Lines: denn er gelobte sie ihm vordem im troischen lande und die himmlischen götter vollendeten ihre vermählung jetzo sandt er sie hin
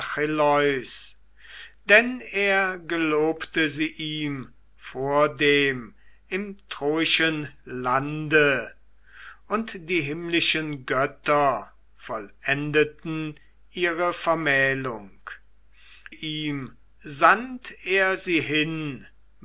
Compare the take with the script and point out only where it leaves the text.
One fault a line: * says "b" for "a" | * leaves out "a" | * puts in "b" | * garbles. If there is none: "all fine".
* says "ihm" for "jetzo"